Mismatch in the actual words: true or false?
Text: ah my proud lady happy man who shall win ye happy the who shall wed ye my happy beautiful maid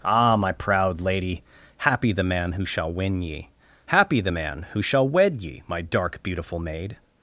true